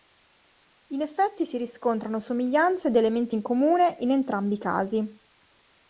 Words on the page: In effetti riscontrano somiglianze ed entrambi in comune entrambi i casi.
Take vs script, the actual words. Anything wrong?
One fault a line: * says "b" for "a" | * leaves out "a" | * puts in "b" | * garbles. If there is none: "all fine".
* puts in "si"
* says "elementi" for "entrambi"
* puts in "in"